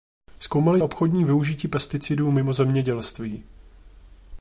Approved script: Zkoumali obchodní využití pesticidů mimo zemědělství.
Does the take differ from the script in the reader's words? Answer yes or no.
no